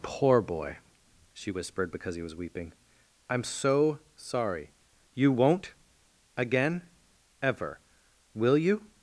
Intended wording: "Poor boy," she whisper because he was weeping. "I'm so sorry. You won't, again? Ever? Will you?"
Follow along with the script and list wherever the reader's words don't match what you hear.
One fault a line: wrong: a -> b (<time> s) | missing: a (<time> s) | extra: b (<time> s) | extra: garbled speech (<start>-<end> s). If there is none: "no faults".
wrong: whisper -> whispered (1.5 s)